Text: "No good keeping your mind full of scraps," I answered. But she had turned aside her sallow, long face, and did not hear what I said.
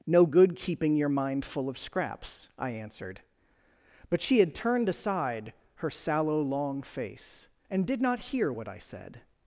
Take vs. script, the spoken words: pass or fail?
pass